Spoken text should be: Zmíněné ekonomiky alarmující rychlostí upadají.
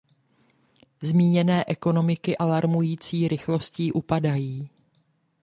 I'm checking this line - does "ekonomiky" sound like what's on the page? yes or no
yes